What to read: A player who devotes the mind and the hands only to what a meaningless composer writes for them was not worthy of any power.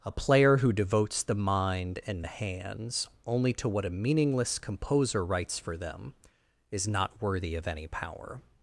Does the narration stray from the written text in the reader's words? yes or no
yes